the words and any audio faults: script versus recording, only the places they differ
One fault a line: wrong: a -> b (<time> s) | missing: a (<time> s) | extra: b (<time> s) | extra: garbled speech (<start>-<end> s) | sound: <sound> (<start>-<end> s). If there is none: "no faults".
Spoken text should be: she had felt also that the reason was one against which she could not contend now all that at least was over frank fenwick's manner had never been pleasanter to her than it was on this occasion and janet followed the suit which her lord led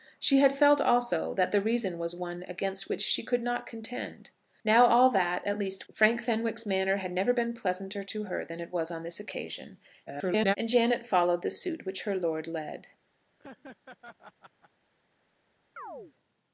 missing: was over (5.9 s)
extra: garbled speech (10.1-10.6 s)
sound: laugh (13.4-14.7 s)
sound: chirp (15.8-16.1 s)